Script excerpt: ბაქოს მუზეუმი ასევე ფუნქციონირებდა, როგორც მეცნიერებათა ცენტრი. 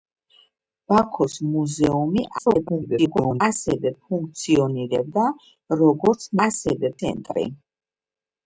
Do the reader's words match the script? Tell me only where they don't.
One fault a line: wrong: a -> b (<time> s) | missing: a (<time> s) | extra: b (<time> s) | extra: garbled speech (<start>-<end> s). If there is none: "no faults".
extra: garbled speech (2.4-3.4 s)
wrong: მეცნიერებათა -> ასევე (6.5 s)